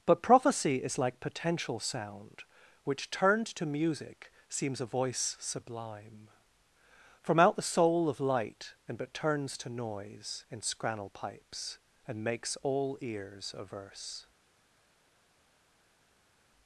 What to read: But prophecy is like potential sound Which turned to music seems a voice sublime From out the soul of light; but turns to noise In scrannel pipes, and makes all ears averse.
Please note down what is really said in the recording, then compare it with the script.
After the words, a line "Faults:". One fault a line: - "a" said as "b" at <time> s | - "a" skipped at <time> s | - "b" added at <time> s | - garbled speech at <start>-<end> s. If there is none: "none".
But prophecy is like potential sound Which turned to music seems a voice sublime From out the soul of light; and but turns to noise In scrannel pipes, and makes all ears averse.
Faults:
- "and" added at 8.9 s